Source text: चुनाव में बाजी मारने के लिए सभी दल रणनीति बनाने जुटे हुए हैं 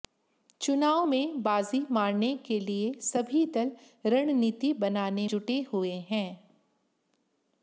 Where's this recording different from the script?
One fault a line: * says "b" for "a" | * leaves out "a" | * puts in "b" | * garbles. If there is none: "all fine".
all fine